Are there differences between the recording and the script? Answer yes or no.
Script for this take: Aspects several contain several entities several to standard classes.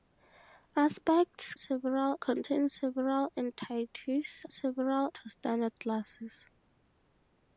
no